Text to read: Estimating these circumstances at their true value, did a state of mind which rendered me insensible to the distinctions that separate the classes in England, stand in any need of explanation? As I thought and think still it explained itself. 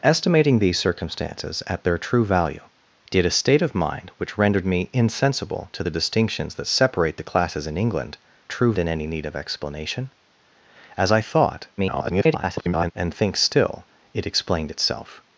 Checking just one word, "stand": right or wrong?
wrong